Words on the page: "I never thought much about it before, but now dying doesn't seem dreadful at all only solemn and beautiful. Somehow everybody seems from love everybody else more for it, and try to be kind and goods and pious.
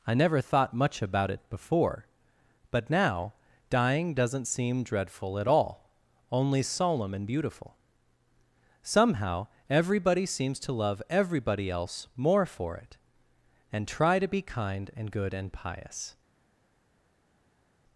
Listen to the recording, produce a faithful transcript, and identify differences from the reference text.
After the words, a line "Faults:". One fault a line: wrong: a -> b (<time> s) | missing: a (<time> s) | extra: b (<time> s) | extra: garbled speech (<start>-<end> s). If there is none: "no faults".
"I never thought much about it before, but now dying doesn't seem dreadful at all only solemn and beautiful. Somehow everybody seems to love everybody else more for it, and try to be kind and good and pious.
Faults:
wrong: from -> to (10.6 s)
wrong: goods -> good (15.1 s)